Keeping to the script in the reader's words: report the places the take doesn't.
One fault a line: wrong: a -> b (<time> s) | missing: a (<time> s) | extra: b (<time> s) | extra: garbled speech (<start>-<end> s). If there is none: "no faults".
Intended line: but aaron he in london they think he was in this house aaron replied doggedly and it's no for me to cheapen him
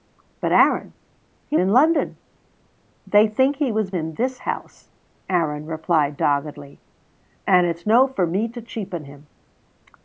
no faults